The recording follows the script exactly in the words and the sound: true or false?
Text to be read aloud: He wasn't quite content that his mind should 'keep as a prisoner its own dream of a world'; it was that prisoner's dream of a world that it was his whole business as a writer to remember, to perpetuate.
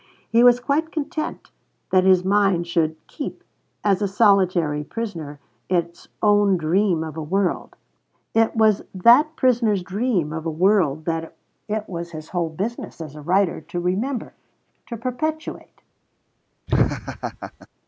false